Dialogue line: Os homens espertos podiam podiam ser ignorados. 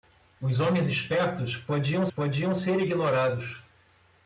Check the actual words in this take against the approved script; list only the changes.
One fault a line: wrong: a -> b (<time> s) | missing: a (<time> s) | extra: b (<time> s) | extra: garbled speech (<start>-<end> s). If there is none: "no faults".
no faults